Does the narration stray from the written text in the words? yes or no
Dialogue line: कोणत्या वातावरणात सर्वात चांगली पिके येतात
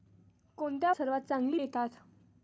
yes